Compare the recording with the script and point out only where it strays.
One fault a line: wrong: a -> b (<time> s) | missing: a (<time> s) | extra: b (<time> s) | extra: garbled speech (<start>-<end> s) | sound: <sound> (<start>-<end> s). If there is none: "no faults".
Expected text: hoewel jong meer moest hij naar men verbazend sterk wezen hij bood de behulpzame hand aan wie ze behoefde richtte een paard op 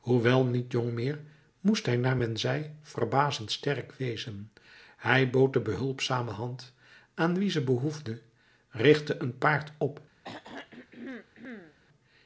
extra: niet (0.5 s)
extra: zei (2.4 s)
sound: throat clearing (10.2-11.8 s)